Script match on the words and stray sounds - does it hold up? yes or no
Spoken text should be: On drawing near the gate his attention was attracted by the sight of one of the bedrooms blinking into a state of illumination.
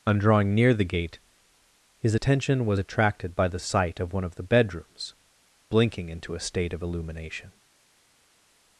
yes